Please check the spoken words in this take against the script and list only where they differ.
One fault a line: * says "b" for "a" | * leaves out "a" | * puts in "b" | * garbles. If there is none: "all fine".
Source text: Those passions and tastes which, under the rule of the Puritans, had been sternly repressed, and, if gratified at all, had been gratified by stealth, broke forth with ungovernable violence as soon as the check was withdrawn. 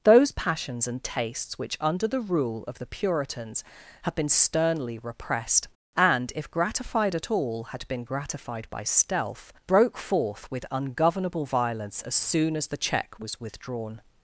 all fine